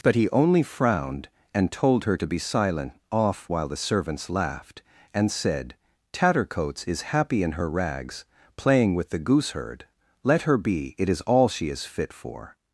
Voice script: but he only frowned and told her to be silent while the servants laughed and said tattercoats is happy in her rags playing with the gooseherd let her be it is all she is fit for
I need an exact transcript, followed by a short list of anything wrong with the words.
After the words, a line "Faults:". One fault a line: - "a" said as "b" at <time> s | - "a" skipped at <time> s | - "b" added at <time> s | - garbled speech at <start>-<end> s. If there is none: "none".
but he only frowned and told her to be silent off while the servants laughed and said tattercoats is happy in her rags playing with the gooseherd let her be it is all she is fit for
Faults:
- "off" added at 3.1 s